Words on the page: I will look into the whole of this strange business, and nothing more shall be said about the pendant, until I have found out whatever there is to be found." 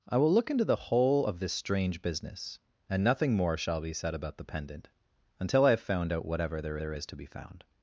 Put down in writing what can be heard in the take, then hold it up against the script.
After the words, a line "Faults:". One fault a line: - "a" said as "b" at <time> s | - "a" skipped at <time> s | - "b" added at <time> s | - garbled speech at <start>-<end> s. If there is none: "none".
I will look into the whole of this strange business, and nothing more shall be said about the pendant, until I have found out whatever there there is to be found."
Faults:
- "there" added at 6.8 s